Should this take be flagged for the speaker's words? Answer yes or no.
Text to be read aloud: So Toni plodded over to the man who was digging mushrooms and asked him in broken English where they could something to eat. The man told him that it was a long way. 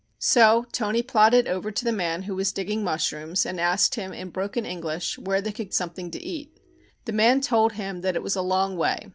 no